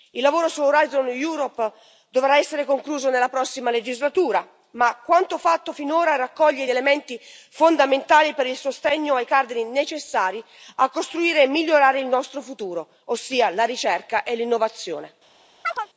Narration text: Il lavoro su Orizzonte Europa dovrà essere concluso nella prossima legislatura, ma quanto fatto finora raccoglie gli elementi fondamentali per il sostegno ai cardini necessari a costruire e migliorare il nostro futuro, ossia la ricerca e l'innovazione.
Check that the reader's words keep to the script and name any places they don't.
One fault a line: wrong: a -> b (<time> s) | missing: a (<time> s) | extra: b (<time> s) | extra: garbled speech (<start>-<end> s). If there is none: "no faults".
no faults